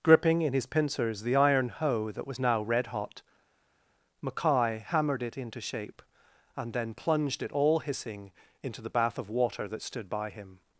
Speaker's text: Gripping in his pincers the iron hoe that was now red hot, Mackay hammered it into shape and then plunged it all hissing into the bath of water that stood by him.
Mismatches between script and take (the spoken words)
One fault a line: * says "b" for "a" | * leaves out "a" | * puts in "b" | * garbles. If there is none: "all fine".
all fine